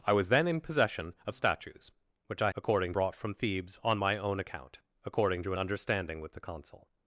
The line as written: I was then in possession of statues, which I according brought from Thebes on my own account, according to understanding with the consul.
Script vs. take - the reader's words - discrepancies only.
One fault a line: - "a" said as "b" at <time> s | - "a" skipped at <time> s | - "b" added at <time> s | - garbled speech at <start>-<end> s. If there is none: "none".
none